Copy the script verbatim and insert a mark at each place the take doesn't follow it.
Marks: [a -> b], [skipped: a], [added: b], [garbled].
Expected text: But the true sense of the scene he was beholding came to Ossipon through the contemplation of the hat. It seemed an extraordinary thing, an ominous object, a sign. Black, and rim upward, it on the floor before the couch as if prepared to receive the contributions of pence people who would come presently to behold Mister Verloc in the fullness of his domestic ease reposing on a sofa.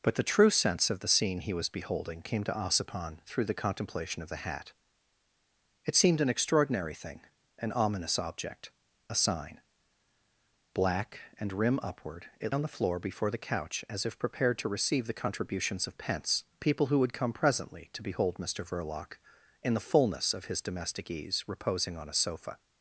But the true sense of the scene he was beholding came to Ossipon through the contemplation of the hat. It seemed an extraordinary thing, an ominous object, a sign. Black, and rim upward, it on the floor before the couch as if prepared to receive the contributions of pence people who would come presently to behold Mister Verloc in the fullness of his domestic ease reposing on a sofa.